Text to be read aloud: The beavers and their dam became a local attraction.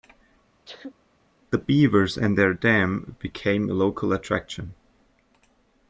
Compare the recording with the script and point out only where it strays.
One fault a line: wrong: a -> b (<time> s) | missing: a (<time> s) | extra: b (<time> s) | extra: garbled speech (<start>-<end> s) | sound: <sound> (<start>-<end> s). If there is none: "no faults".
sound: sneeze (0.7-1.0 s)